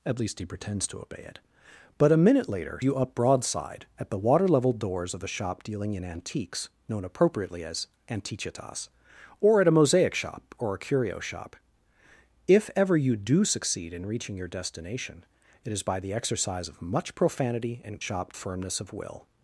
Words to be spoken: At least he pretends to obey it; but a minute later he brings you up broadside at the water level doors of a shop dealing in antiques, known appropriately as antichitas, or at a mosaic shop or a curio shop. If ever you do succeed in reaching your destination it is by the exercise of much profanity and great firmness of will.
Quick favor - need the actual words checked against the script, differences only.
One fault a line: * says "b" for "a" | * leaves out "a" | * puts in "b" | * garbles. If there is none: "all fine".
* leaves out "he brings"
* says "shop" for "great"